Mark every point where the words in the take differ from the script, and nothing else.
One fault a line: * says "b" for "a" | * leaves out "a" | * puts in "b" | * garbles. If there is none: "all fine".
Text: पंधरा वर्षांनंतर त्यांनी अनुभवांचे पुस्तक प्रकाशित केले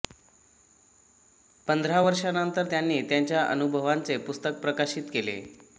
* puts in "त्यांच्या"